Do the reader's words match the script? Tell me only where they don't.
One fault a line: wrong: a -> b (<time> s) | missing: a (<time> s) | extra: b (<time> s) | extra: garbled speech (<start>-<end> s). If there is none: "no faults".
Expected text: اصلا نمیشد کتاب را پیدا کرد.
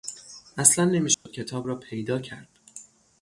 no faults